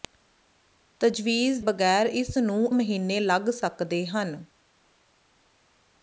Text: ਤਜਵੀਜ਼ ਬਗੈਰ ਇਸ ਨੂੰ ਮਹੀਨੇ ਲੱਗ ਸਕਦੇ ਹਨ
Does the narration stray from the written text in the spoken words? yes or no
no